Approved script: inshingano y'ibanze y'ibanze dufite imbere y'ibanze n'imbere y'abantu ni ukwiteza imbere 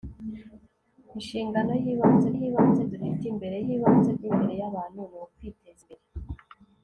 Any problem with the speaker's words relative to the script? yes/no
no